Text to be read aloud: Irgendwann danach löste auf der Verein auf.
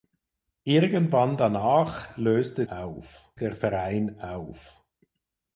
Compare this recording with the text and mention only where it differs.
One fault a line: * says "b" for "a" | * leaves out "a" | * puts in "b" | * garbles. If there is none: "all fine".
all fine